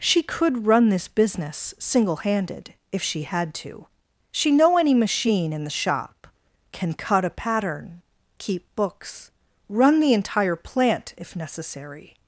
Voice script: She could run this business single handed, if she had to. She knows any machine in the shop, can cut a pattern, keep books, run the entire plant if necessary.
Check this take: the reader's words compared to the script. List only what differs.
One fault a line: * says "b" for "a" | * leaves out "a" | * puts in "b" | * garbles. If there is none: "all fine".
* says "know" for "knows"